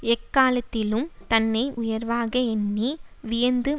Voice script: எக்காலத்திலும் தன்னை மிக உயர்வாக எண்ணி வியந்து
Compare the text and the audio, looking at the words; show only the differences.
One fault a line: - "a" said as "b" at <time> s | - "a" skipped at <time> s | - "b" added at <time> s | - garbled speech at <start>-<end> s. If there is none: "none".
- "மிக" skipped at 1.7 s